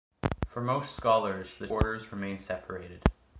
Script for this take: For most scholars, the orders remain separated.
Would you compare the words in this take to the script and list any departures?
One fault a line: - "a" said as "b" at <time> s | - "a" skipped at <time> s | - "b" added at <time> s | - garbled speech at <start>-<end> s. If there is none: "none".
none